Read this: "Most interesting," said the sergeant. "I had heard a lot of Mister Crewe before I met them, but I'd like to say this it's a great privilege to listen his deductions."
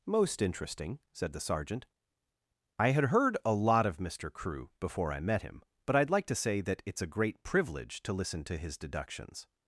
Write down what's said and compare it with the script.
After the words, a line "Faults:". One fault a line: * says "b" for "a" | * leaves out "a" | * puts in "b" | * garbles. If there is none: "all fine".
"Most interesting," said the sergeant. "I had heard a lot of Mister Crewe before I met him, but I'd like to say that it's a great privilege to listen to his deductions."
Faults:
* says "him" for "them"
* says "that" for "this"
* puts in "to"